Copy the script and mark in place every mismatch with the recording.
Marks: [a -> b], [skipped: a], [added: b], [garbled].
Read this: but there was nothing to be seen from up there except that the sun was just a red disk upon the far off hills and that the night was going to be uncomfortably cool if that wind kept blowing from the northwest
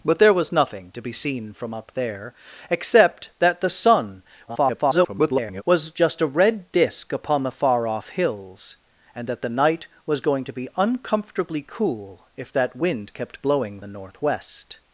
but there was nothing to be seen from up there except that the sun [garbled] was just a red disk upon the far off hills and that the night was going to be uncomfortably cool if that wind kept blowing [skipped: from] the northwest